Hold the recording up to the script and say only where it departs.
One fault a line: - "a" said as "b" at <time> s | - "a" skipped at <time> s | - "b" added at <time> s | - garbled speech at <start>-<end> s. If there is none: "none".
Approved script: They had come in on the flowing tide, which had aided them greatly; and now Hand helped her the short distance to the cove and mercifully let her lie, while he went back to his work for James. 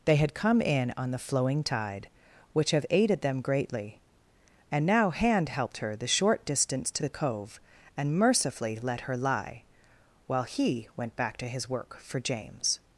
- "had" said as "have" at 2.7 s